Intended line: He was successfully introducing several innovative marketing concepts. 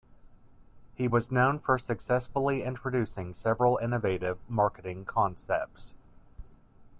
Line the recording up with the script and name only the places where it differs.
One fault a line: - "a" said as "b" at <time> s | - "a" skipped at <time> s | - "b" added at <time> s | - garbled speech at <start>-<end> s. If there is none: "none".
- "known for" added at 1.3 s